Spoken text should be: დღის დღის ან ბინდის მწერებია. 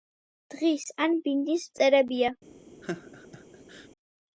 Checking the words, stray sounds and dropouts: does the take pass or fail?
fail